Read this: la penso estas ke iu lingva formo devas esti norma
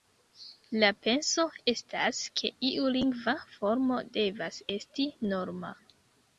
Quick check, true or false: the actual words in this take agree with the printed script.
true